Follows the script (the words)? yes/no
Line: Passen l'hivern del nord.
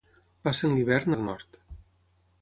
yes